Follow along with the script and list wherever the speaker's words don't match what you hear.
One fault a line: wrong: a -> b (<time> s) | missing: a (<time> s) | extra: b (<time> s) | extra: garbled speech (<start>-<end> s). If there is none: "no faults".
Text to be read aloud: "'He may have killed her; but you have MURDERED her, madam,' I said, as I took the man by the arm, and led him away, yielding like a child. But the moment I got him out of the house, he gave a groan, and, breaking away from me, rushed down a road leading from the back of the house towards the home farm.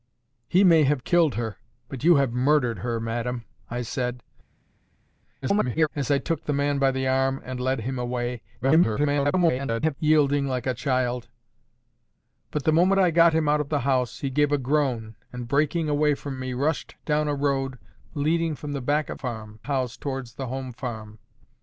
extra: garbled speech (5.4-5.9 s)
extra: garbled speech (8.6-9.9 s)
wrong: the -> farm (19.2 s)